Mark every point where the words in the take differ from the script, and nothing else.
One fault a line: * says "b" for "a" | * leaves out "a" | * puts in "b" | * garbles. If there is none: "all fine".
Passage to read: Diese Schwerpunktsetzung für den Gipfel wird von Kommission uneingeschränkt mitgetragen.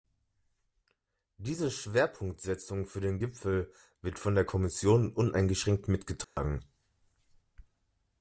* puts in "der"